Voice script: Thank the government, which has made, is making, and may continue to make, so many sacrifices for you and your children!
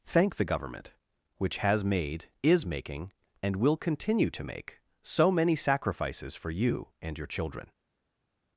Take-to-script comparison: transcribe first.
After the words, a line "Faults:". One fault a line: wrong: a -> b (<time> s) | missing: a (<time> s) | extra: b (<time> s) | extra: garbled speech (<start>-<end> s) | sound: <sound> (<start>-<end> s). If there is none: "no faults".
Thank the government, which has made, is making, and will continue to make, so many sacrifices for you and your children!
Faults:
wrong: may -> will (3.5 s)